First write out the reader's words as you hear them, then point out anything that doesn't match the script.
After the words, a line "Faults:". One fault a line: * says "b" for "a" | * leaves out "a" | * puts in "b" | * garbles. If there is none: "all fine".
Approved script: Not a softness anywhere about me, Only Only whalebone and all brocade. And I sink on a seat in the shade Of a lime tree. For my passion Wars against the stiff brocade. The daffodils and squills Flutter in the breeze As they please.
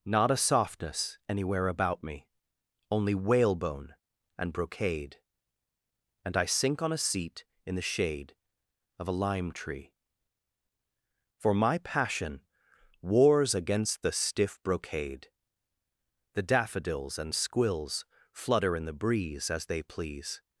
Not a softness anywhere about me, Only whalebone and brocade. And I sink on a seat in the shade Of a lime tree. For my passion Wars against the stiff brocade. The daffodils and squills Flutter in the breeze As they please.
Faults:
* leaves out "Only"
* leaves out "all"